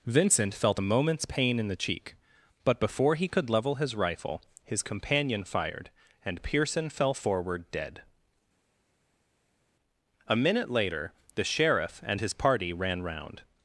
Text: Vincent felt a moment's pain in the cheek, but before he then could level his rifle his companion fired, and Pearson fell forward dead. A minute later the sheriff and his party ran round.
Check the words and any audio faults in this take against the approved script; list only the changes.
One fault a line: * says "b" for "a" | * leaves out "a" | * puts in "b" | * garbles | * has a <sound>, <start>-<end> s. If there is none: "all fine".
* leaves out "then"